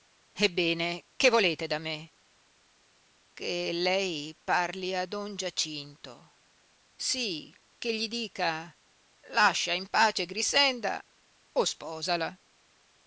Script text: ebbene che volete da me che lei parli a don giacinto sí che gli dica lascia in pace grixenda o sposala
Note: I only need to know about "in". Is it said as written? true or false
true